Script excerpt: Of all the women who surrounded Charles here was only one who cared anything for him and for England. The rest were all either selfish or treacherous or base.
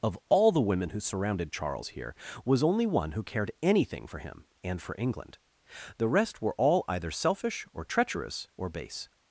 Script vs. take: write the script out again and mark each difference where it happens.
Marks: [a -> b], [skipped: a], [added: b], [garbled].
Of all the women who surrounded Charles here was only one who cared anything for him and for England. The rest were all either selfish or treacherous or base.